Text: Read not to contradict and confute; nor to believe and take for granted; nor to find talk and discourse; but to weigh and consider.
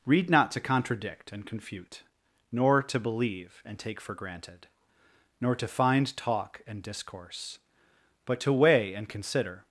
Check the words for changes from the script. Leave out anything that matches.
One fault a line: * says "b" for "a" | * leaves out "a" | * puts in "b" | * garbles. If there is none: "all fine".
all fine